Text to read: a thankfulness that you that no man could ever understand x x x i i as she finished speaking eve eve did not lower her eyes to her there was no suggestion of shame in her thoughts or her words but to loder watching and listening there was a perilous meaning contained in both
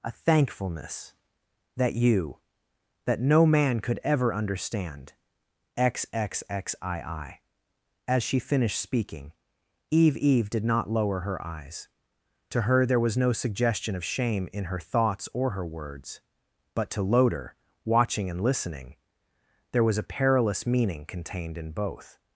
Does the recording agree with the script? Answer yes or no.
yes